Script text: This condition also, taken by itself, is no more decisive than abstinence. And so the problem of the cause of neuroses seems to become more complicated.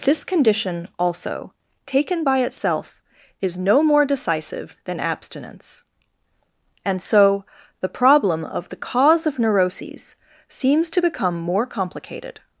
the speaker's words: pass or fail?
pass